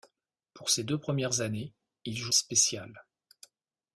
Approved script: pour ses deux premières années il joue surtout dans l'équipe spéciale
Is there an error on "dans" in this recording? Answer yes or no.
yes